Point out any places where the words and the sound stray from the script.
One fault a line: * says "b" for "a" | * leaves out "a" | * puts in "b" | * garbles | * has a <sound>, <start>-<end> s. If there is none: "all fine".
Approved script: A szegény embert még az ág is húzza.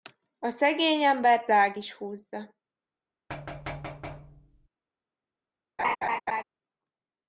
* leaves out "még az"
* has a thud, 3.3-4.7 s
* has a laugh, 5.8-6.4 s